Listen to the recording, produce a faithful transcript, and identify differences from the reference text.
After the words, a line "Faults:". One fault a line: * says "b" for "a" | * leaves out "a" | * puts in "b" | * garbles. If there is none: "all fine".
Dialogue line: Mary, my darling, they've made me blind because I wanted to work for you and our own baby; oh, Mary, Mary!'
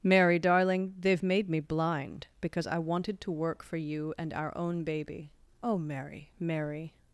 Mary, darling, they've made me blind because I wanted to work for you and our own baby; oh, Mary, Mary!'
Faults:
* leaves out "my"